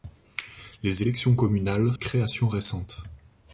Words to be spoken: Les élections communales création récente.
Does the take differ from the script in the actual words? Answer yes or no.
no